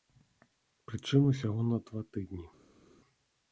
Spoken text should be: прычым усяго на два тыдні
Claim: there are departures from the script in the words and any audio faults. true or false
false